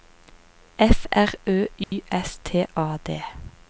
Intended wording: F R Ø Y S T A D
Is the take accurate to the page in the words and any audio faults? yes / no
no